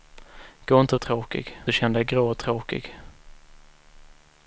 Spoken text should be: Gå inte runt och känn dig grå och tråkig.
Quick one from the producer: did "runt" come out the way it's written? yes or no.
no